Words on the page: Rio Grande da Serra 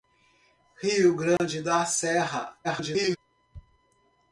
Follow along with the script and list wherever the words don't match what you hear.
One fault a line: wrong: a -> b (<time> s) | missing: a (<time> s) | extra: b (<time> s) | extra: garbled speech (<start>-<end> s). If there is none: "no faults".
extra: garbled speech (2.6-3.2 s)